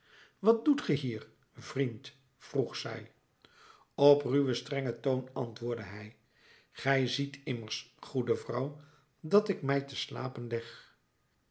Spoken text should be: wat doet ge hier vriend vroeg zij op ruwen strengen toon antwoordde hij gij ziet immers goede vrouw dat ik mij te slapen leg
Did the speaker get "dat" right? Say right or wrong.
right